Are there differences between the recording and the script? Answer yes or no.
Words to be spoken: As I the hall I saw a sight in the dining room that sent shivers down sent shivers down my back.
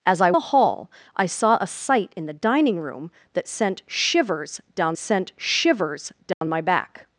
no